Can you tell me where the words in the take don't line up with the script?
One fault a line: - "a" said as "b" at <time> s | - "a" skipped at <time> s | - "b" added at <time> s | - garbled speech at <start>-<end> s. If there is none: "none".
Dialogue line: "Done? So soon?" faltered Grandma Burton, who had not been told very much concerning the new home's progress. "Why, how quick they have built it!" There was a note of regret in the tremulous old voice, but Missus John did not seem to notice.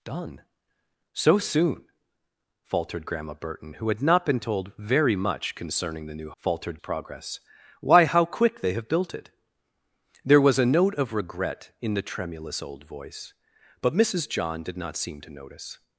- "home's" said as "faltered" at 6.4 s